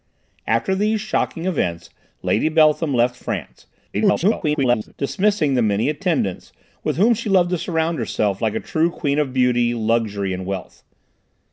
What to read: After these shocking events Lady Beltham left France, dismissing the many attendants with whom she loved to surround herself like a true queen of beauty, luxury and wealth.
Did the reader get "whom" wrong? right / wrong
right